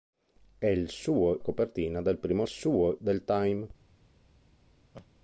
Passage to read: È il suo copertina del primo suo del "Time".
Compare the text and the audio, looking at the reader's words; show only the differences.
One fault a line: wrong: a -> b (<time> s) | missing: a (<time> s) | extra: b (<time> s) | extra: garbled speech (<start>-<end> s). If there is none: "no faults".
no faults